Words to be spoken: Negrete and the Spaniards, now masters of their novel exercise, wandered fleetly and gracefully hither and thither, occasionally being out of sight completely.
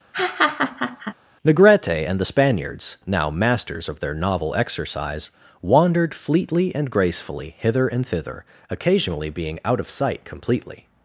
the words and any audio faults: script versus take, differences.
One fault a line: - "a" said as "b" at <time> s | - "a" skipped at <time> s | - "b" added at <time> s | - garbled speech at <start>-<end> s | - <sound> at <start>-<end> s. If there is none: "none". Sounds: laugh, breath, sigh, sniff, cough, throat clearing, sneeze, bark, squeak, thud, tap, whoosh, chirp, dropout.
- laugh at 0.1-1.1 s